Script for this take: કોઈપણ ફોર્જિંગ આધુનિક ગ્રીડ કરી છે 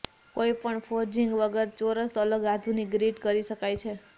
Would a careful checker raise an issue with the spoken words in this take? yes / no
yes